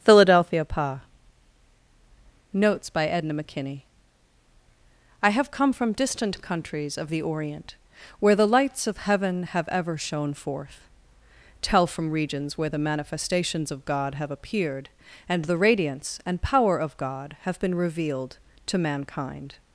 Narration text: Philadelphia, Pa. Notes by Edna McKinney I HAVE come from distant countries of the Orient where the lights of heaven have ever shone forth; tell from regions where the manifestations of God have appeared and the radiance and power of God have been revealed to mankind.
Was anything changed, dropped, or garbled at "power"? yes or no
no